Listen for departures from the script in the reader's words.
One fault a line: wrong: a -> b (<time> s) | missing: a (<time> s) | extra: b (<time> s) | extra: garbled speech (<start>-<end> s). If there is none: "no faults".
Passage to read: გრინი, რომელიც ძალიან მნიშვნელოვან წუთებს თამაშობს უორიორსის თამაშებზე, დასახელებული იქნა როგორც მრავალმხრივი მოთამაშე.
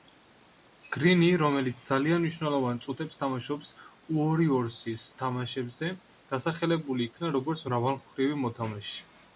no faults